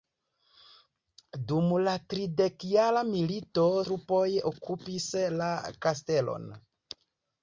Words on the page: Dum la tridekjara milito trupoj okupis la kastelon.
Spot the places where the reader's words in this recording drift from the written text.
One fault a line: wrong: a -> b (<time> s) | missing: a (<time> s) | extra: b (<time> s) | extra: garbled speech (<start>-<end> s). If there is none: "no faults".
no faults